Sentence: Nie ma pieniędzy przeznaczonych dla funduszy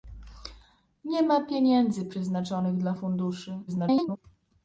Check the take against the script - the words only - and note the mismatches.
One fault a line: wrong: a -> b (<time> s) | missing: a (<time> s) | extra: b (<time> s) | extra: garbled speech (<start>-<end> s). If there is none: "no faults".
extra: garbled speech (3.7-4.2 s)